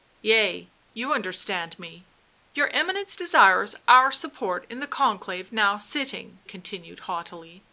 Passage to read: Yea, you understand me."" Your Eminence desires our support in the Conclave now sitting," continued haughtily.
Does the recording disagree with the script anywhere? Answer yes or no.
no